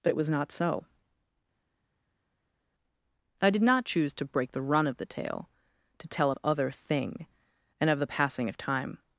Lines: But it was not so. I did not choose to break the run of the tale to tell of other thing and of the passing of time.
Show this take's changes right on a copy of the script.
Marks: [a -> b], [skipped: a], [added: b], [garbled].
But it was not so. I did not choose to break the run of the tale to tell of other thing and of the passing of time.